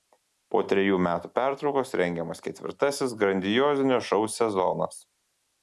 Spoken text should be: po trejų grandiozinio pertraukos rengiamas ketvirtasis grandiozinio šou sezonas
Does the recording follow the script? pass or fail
fail